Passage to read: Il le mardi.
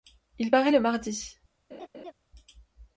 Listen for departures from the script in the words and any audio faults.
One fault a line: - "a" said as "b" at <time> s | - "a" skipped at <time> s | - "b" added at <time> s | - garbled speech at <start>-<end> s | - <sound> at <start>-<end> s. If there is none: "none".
- "paraît" added at 0.5 s
- laugh at 1.7-2.1 s